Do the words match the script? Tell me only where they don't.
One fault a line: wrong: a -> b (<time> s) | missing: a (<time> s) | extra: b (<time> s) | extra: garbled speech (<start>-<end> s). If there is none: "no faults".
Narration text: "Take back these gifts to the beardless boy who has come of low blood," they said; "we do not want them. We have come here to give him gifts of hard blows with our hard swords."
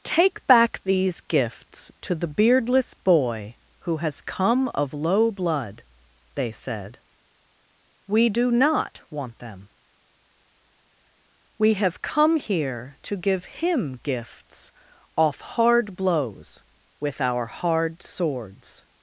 wrong: of -> off (15.2 s)